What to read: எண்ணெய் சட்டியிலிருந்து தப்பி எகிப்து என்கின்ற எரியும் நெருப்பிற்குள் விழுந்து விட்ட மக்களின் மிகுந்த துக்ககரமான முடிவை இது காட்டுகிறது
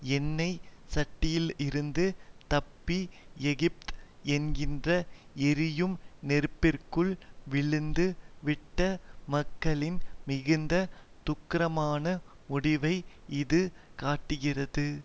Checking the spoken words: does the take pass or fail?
pass